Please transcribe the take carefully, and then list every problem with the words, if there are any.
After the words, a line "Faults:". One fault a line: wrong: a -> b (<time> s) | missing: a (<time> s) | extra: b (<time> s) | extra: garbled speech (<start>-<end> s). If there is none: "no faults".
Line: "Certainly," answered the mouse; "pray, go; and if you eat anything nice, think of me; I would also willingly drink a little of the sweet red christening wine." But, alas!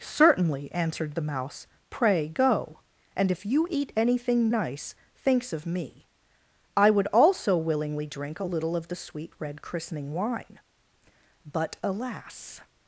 "Certainly," answered the mouse; "pray, go; and if you eat anything nice, thinks of me; I would also willingly drink a little of the sweet red christening wine." But, alas!
Faults:
wrong: think -> thinks (5.2 s)